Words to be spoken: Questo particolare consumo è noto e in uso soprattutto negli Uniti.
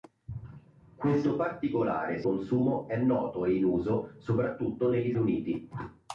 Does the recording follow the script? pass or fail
pass